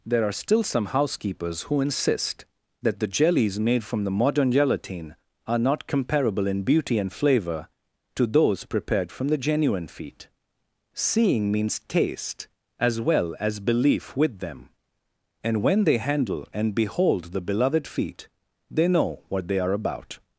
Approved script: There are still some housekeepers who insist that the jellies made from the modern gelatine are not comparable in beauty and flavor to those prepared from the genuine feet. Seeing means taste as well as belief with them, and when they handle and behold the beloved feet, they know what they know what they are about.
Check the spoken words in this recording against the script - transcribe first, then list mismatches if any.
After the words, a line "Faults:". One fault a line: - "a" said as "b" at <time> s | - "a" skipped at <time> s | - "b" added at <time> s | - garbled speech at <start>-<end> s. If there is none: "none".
There are still some housekeepers who insist that the jellies made from the modern gelatine are not comparable in beauty and flavor to those prepared from the genuine feet. Seeing means taste as well as belief with them, and when they handle and behold the beloved feet, they know what they are about.
Faults:
- "know what they" skipped at 19.6 s